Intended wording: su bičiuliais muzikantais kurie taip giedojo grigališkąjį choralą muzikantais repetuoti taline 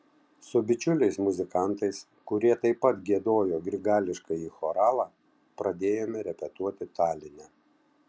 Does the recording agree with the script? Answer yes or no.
no